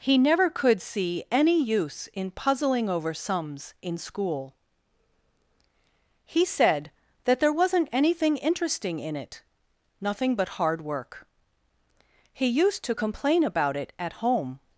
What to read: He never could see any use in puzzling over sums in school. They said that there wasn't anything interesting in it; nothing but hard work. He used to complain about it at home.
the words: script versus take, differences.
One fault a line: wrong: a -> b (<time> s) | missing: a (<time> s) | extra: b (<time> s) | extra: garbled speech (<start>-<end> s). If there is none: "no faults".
wrong: They -> He (6.2 s)